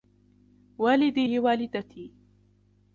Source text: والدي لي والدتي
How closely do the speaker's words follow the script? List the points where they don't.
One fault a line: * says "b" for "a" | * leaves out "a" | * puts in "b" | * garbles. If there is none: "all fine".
all fine